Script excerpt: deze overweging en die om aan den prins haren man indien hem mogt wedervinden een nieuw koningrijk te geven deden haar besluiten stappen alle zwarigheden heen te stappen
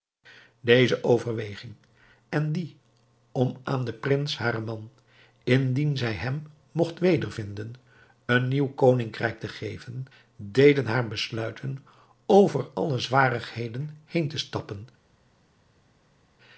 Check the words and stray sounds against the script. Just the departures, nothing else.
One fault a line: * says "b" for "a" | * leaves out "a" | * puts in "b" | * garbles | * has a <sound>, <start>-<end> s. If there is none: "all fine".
* puts in "zij"
* says "over" for "stappen"